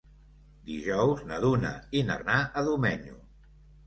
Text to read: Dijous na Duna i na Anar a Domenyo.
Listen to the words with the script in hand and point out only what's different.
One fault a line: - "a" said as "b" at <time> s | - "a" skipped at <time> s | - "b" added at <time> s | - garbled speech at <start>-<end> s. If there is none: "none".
none